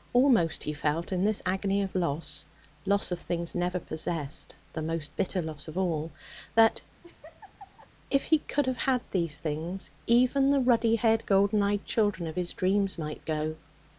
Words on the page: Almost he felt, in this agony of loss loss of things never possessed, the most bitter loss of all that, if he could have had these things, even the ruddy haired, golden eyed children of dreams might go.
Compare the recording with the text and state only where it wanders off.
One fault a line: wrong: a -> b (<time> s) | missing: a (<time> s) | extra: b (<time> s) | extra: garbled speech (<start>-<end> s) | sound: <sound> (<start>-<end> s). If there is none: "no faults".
sound: laugh (7.0-7.9 s)
extra: his (12.3 s)